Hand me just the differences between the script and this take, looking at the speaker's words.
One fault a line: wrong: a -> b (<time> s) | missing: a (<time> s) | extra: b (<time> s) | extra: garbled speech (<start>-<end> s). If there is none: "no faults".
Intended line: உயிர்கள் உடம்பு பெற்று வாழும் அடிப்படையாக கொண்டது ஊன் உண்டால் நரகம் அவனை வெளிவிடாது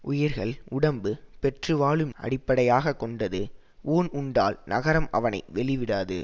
no faults